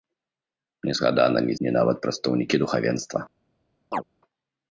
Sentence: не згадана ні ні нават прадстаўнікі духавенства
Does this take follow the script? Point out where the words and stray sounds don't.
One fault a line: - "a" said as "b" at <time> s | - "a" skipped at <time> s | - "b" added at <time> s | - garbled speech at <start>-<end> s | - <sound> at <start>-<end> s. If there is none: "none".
- chirp at 3.9-4.0 s